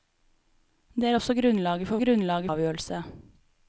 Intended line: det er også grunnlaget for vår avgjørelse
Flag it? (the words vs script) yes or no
yes